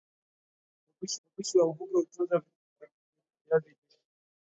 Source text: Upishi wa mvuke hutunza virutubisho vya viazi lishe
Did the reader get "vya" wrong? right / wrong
wrong